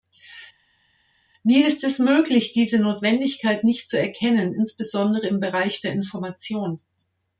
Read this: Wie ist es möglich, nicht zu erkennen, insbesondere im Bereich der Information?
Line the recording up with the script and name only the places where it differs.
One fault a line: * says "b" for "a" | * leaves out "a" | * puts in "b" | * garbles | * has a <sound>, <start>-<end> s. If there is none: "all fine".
* puts in "diese Notwendigkeit"